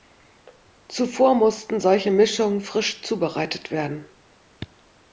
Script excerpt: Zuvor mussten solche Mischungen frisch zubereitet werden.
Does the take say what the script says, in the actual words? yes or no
yes